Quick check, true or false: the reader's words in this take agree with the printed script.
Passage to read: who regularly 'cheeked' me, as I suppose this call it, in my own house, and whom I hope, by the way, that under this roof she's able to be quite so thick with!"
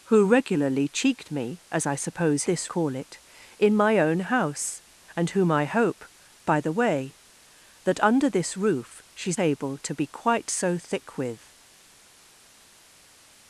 true